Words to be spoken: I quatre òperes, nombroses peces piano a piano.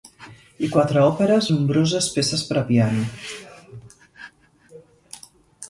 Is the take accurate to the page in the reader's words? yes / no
no